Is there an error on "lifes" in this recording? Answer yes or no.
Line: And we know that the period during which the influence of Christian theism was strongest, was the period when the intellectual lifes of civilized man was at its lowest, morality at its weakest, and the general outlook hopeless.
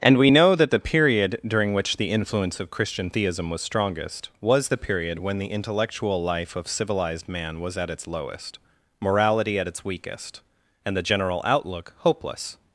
yes